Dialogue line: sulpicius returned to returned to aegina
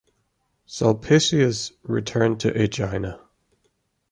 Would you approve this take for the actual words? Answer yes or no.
no